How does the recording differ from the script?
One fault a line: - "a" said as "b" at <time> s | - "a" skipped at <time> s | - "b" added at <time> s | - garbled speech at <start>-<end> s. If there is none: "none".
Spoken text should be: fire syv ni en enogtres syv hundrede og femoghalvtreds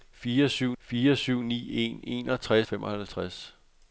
- "fire syv" added at 0.8 s
- "syv hundrede og" skipped at 2.7 s